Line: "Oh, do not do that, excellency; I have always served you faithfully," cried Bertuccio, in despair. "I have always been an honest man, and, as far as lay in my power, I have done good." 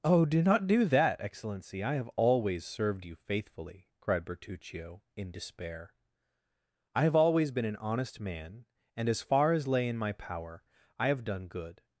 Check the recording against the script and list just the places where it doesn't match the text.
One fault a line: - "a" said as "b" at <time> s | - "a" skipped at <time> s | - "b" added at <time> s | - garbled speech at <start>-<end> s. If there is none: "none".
none